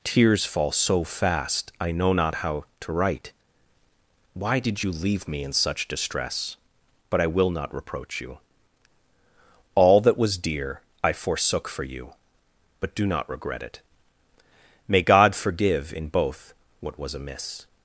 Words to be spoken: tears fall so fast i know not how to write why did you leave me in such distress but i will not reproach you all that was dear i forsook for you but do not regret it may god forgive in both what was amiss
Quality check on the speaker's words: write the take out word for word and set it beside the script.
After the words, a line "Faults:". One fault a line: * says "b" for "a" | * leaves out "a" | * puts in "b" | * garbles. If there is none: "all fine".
tears fall so fast i know not how to write why did you leave me in such distress but i will not reproach you all that was dear i forsook for you but do not regret it may god forgive in both what was amiss
Faults:
all fine